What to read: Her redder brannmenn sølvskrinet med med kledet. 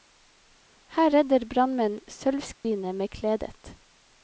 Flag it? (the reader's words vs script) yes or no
yes